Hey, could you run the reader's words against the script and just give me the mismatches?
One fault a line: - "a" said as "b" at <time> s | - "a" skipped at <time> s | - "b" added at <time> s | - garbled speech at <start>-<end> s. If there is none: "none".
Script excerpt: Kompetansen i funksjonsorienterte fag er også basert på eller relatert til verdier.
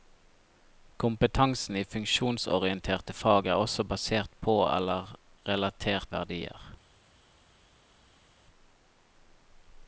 - "til" skipped at 6.1 s